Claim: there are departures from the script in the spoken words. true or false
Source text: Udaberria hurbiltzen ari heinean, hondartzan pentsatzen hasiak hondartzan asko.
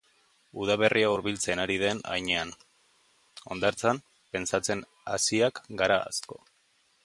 true